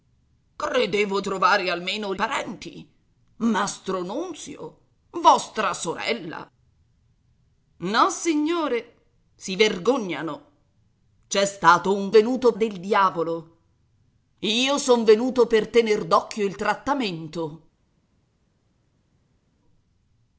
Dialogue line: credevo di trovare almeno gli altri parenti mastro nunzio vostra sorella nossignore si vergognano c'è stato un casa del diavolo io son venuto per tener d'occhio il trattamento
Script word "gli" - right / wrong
wrong